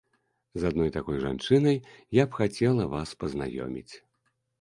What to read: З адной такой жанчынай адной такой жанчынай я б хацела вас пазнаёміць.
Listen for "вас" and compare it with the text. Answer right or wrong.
right